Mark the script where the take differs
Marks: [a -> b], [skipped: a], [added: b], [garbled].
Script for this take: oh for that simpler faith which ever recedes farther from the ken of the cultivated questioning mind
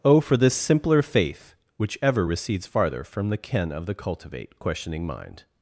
oh for [that -> this] simpler faith which ever recedes farther from the ken of the [cultivated -> cultivate] questioning mind